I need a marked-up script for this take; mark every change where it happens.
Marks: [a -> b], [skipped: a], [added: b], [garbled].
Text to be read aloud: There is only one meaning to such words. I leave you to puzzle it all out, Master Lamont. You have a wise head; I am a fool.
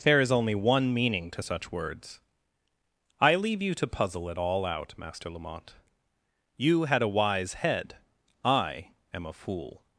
There is only one meaning to such words. I leave you to puzzle it all out, Master Lamont. You [have -> had] a wise head; I am a fool.